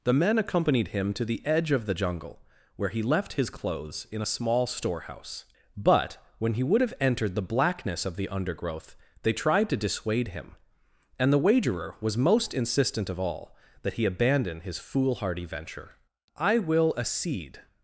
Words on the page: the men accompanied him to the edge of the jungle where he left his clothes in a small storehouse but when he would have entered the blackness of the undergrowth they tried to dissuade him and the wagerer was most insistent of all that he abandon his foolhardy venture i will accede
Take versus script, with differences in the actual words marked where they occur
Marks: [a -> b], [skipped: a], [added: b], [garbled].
the men accompanied him to the edge of the jungle where he left his clothes in a small storehouse but when he would have entered the blackness of the undergrowth they tried to dissuade him and the wagerer was most insistent of all that he abandon his foolhardy venture i will accede